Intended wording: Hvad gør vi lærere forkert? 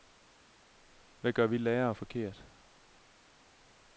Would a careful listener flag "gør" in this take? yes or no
no